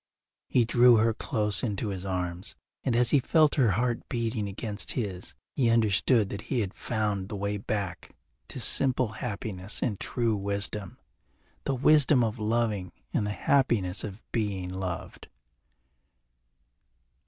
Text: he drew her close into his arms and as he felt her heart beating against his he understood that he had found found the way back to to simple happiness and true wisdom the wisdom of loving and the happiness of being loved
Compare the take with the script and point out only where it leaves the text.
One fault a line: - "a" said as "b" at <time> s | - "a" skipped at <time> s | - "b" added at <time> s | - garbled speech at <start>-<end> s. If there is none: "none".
- "found" skipped at 7.3 s
- "to" skipped at 8.6 s